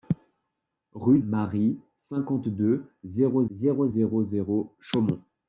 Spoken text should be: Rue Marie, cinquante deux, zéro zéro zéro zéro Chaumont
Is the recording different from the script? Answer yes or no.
no